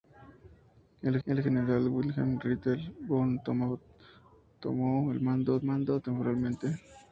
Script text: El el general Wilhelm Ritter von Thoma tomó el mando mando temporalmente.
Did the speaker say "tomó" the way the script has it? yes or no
yes